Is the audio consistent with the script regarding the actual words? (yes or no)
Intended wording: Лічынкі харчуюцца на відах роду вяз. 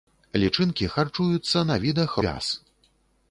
no